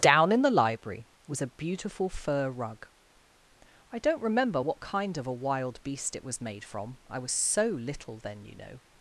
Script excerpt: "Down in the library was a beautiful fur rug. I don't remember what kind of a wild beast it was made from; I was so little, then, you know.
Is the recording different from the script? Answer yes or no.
no